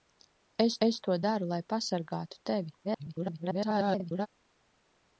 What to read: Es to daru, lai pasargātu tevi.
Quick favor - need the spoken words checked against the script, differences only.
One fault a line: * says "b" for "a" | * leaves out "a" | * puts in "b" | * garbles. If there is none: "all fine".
* puts in "es"
* garbles